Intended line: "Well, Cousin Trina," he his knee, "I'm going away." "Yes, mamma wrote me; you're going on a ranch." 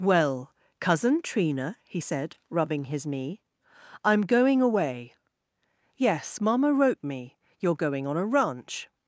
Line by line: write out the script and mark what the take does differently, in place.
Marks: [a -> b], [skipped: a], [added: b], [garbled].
"Well, Cousin Trina," he [added: said rubbing] his knee, "I'm going away." "Yes, mamma wrote me; you're going on a ranch."